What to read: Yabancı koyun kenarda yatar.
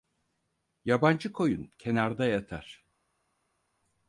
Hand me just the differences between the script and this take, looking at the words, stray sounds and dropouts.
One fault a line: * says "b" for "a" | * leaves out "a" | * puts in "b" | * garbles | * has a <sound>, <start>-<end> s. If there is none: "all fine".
all fine